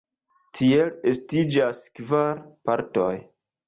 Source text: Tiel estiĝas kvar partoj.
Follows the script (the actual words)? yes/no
yes